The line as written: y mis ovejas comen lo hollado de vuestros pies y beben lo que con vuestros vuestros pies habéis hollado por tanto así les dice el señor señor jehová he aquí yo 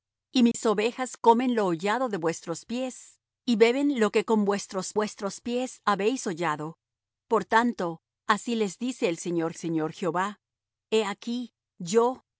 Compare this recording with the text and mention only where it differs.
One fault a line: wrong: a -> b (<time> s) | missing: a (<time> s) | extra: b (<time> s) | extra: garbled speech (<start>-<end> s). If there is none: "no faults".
no faults